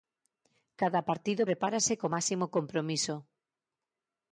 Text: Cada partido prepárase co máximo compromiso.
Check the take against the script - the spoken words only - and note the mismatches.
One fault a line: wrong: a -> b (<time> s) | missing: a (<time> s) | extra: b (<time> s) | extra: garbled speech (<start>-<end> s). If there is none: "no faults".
no faults